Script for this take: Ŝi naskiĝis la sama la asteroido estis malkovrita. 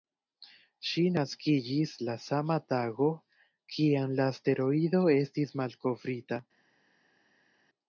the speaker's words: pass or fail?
fail